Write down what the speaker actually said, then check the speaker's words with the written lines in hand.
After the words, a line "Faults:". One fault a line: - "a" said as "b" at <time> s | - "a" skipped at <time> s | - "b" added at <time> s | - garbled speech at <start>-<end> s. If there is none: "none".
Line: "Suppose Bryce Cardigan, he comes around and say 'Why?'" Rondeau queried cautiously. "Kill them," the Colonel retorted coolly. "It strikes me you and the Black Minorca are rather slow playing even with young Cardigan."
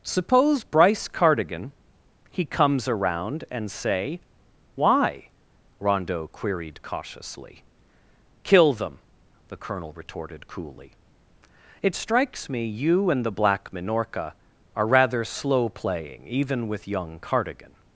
"Suppose Bryce Cardigan, he comes around and say 'Why?'" Rondeau queried cautiously. "Kill them," the Colonel retorted coolly. "It strikes me you and the Black Minorca are rather slow playing even with young Cardigan."
Faults:
none